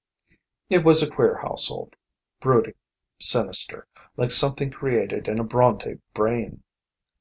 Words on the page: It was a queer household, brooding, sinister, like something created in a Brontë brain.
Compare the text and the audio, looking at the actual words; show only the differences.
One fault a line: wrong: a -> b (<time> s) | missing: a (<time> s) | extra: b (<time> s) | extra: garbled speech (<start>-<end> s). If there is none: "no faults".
no faults